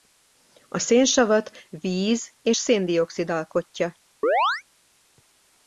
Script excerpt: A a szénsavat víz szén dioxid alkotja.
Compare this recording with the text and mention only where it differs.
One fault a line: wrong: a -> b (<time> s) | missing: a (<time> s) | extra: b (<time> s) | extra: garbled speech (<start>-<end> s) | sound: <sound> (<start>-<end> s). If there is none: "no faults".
missing: a (0.8 s)
extra: és (2.4 s)
sound: chirp (4.2-4.6 s)